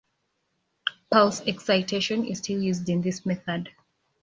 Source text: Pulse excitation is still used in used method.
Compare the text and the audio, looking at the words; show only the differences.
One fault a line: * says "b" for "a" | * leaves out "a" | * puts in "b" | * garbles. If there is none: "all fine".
* says "this" for "used"